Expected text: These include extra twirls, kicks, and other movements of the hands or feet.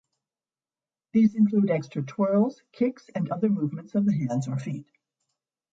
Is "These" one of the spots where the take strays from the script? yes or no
no